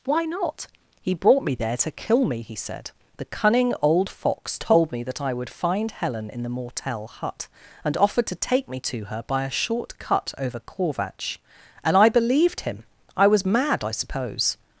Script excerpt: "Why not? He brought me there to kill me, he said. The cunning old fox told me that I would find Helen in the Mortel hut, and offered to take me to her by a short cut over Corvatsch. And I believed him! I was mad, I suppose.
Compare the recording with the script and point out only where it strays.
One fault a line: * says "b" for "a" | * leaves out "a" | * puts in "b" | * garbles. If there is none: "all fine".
all fine